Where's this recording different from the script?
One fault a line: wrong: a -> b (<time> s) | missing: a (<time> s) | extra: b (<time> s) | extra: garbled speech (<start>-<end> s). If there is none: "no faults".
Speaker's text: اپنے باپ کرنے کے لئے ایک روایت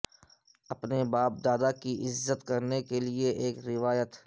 extra: دادا کی عزت (1.4 s)